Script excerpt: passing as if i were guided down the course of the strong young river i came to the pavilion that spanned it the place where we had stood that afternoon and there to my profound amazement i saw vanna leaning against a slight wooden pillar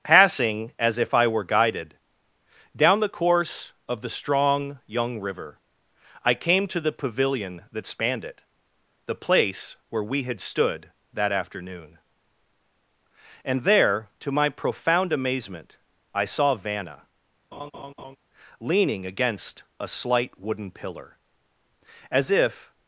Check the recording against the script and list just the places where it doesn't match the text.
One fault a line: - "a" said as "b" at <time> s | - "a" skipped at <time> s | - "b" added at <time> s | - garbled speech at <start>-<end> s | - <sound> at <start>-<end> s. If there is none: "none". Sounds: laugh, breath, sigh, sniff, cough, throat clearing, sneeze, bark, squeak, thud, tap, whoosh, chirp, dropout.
- laugh at 17.5-18.2 s
- "as if" added at 22.1 s